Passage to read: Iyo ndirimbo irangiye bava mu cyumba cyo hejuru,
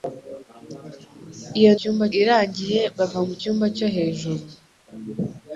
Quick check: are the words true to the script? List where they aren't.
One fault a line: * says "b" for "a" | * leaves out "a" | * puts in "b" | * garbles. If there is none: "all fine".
* says "cyumba" for "ndirimbo"